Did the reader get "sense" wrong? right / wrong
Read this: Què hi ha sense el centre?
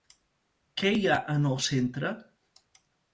wrong